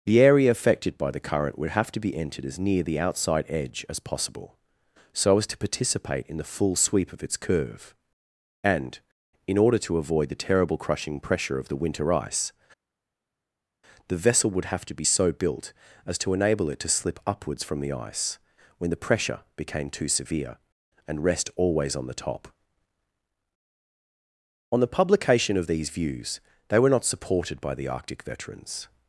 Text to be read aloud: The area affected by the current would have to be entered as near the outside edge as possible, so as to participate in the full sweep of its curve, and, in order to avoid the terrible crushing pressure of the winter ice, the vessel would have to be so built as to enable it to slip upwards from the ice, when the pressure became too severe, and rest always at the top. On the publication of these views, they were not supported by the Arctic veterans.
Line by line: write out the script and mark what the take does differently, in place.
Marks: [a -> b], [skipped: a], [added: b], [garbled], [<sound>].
The area affected by the current would have to be entered as near the outside edge as possible, so as to participate in the full sweep of its curve, and, in order to avoid the terrible crushing pressure of the winter ice, the vessel would have to be so built as to enable it to slip upwards from the ice, when the pressure became too severe, and rest always [at -> on] the top. On the publication of these views, they were not supported by the Arctic veterans.